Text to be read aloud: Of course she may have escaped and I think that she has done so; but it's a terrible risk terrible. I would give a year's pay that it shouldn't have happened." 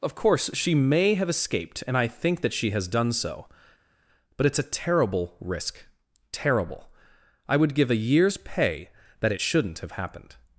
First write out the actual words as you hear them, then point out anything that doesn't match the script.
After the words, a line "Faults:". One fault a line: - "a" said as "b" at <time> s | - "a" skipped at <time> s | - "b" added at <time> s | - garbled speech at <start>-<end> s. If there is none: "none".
Of course she may have escaped and I think that she has done so; but it's a terrible risk terrible. I would give a year's pay that it shouldn't have happened."
Faults:
none